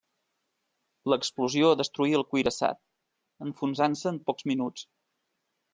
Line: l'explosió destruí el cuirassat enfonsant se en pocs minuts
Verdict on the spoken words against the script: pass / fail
pass